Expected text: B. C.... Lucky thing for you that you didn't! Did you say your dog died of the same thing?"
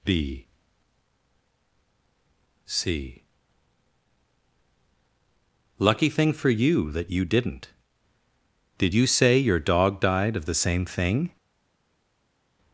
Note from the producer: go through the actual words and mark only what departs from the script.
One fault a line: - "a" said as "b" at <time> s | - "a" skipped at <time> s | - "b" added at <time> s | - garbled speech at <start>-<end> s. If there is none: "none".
none